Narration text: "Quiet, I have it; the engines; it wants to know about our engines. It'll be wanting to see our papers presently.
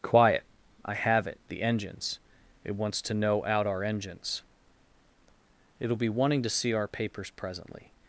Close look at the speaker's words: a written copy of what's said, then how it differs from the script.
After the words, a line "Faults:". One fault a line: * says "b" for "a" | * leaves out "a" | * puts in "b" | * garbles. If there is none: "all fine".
"Quiet, I have it; the engines; it wants to know out our engines. It'll be wanting to see our papers presently.
Faults:
* says "out" for "about"